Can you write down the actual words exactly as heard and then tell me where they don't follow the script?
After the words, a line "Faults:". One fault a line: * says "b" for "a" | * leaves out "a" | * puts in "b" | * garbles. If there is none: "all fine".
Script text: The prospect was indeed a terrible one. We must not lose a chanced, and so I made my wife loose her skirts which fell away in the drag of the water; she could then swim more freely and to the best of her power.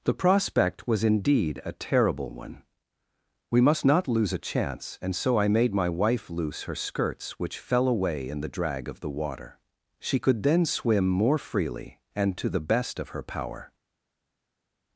The prospect was indeed a terrible one. We must not lose a chance, and so I made my wife loose her skirts which fell away in the drag of the water; she could then swim more freely and to the best of her power.
Faults:
* says "chance" for "chanced"